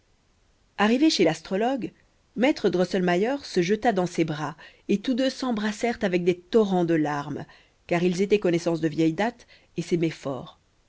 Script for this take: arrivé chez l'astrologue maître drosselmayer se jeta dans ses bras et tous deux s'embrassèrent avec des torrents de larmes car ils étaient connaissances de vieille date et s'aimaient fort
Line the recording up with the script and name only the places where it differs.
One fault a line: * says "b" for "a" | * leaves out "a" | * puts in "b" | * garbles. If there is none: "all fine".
all fine